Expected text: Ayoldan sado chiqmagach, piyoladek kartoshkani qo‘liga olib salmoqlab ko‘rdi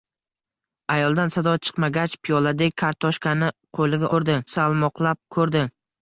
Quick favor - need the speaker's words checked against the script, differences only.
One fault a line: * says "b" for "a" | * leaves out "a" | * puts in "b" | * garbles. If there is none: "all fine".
* says "ko‘rdi" for "olib"